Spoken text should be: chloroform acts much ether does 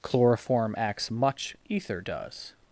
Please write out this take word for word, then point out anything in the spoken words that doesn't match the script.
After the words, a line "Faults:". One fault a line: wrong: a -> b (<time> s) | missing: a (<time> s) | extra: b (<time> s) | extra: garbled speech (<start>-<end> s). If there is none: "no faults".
chloroform acts much ether does
Faults:
no faults